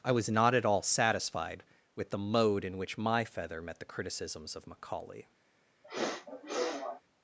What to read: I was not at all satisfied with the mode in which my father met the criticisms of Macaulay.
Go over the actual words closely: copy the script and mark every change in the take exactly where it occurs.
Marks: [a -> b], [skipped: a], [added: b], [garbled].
I was not at all satisfied with the mode in which my [father -> feather] met the criticisms of Macaulay.